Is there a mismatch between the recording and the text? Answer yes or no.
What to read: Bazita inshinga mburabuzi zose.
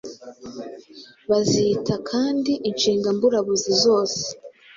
yes